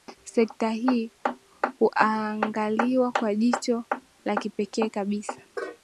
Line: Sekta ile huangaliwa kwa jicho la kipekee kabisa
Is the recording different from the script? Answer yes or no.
yes